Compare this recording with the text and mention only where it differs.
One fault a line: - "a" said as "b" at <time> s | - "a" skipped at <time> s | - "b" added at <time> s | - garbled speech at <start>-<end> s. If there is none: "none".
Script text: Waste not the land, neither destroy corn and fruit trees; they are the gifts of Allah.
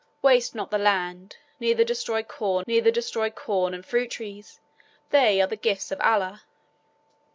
- "neither destroy corn" added at 2.7 s